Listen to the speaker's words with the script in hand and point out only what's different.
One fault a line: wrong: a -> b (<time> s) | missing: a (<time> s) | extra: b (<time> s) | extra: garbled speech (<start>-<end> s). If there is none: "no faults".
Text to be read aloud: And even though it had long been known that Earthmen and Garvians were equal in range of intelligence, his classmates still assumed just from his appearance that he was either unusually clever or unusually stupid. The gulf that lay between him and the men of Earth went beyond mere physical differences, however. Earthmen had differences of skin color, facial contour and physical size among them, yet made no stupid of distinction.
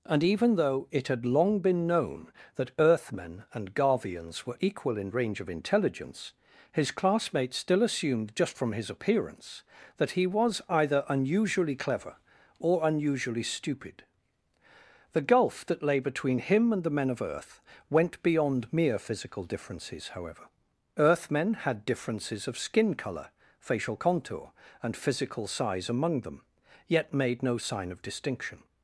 wrong: stupid -> sign (27.6 s)